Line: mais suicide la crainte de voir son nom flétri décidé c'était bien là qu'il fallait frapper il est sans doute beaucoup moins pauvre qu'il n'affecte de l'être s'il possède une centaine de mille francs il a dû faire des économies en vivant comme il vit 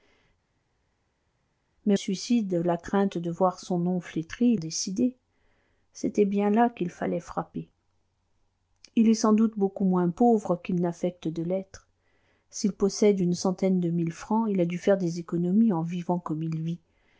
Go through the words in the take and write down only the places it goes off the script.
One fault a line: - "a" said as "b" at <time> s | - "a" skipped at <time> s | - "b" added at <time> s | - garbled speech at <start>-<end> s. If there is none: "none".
none